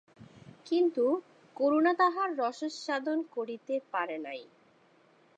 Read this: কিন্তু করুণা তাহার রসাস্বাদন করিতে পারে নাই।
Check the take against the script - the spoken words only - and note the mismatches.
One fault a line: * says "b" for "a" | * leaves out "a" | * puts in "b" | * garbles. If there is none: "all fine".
all fine